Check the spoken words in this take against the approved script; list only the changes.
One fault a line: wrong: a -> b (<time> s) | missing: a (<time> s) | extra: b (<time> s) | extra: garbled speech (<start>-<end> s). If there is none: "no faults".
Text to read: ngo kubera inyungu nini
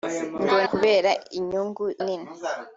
no faults